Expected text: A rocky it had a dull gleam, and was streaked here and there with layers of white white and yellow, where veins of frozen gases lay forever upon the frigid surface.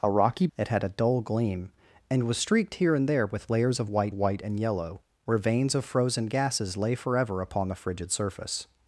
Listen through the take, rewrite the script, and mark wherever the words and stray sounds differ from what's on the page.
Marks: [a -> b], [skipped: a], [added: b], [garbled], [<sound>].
A rocky it had a dull gleam, and was streaked here and there with layers of white white and yellow, where veins of frozen gases lay forever upon the frigid surface.